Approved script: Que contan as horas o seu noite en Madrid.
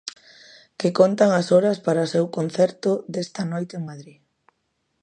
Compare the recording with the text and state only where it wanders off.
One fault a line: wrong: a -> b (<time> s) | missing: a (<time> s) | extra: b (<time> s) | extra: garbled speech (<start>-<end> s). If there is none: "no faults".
extra: para (1.9 s)
extra: concerto desta (2.4 s)